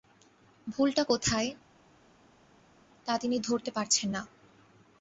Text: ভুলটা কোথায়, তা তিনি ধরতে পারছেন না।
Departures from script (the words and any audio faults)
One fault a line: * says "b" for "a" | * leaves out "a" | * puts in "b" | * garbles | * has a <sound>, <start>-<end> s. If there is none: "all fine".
all fine